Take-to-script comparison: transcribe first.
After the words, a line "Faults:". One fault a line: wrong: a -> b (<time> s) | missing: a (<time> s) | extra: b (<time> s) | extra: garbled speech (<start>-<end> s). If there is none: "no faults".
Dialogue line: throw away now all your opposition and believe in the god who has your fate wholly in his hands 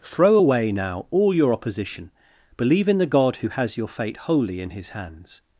throw away now all your opposition believe in the god who has your fate wholly in his hands
Faults:
missing: and (2.1 s)